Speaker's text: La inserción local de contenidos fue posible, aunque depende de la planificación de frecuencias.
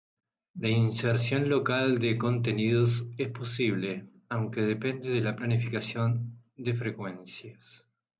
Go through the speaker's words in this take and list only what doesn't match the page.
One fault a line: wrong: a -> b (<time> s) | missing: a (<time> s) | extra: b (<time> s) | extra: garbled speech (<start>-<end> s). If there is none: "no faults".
wrong: fue -> es (3.2 s)